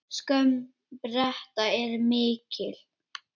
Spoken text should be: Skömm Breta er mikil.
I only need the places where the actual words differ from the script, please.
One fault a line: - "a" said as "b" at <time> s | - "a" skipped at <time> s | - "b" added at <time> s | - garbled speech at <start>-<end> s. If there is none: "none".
none